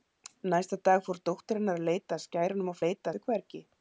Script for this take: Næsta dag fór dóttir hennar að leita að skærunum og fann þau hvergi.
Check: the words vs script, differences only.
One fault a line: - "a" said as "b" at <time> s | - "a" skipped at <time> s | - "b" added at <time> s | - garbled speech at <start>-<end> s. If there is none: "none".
- "fann" said as "leita" at 2.9 s